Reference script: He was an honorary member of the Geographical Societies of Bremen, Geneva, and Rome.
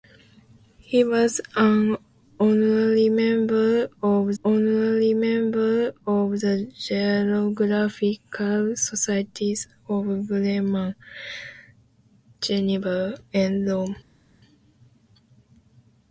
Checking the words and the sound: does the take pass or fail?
fail